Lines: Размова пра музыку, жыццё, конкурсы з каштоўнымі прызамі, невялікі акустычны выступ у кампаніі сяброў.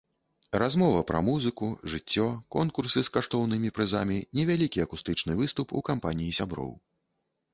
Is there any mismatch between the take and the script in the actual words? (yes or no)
no